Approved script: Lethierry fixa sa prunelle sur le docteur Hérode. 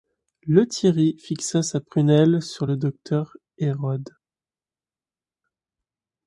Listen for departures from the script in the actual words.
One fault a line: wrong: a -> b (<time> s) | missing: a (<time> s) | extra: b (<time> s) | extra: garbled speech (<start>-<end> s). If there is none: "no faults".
no faults